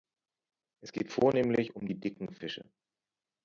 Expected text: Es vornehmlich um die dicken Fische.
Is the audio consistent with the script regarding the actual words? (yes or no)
no